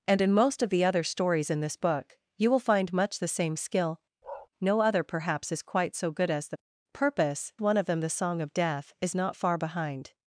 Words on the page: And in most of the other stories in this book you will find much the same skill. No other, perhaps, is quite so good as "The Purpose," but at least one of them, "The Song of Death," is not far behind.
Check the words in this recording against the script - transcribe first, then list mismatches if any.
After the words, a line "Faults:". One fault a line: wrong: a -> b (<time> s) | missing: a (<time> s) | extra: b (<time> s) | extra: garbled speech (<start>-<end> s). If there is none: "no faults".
And in most of the other stories in this book you will find much the same skill. No other, perhaps, is quite so good as "The Purpose," one of them, "The Song of Death," is not far behind.
Faults:
missing: but at least (7.5 s)